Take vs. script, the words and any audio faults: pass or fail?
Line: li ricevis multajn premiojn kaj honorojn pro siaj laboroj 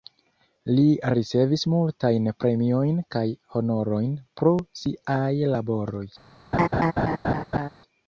fail